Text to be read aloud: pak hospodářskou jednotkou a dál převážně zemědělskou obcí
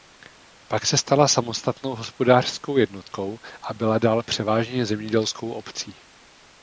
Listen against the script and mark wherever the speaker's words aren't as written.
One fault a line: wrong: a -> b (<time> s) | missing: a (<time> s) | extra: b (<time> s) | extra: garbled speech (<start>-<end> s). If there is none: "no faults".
extra: se stala samostatnou (0.8 s)
extra: byla (3.7 s)